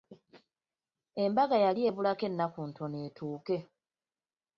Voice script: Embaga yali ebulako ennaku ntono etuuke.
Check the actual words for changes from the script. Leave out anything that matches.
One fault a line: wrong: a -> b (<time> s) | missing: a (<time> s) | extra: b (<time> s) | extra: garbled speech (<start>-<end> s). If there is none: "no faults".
no faults